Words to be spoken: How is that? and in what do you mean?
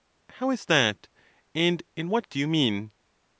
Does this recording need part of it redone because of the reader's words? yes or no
no